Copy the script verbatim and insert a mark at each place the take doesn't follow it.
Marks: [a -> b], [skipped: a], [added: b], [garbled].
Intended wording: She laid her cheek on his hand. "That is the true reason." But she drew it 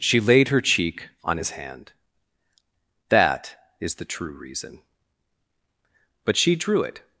She laid her cheek on his hand. "That is the true reason." But she drew it